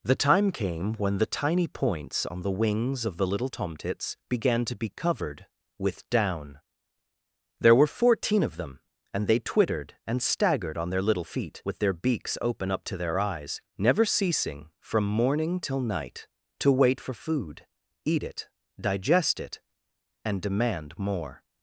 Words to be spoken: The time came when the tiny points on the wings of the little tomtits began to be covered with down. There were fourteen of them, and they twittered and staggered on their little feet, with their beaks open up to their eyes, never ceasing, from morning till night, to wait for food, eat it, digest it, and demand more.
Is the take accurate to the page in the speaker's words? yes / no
yes